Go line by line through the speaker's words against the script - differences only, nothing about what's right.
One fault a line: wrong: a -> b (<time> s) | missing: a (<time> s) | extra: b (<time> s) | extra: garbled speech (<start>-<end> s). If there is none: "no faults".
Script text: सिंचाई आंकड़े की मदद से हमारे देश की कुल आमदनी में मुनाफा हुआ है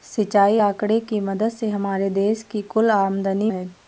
missing: में मुनाफा हुआ (3.5 s)